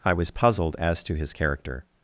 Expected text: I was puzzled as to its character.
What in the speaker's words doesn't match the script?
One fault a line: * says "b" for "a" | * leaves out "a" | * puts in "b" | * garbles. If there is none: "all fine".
* says "his" for "its"